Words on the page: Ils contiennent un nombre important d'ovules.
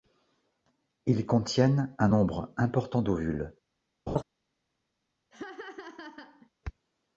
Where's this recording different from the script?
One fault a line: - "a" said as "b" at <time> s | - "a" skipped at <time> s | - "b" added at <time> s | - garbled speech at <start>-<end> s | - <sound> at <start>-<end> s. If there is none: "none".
- laugh at 4.1-4.2 s
- laugh at 5.3-6.5 s